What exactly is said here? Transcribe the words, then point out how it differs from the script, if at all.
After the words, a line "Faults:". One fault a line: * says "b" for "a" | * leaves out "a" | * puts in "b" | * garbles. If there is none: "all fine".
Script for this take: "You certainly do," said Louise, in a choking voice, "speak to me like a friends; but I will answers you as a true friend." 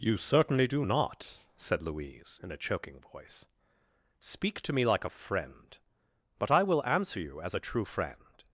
"You certainly do not," said Louise, in a choking voice, "speak to me like a friend; but I will answer you as a true friend."
Faults:
* puts in "not"
* says "friend" for "friends"
* says "answer" for "answers"